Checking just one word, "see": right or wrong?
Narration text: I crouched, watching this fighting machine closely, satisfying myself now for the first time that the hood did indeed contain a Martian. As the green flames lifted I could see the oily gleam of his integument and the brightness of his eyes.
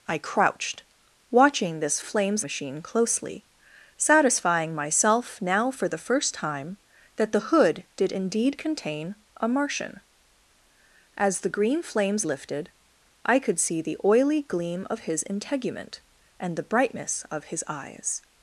right